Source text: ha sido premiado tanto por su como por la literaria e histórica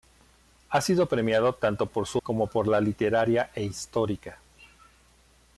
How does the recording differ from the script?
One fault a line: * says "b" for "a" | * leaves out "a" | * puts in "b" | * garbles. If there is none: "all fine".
all fine